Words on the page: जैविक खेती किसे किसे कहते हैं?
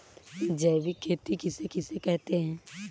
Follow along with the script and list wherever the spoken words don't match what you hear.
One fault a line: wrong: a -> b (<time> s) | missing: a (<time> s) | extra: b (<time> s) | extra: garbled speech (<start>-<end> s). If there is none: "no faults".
no faults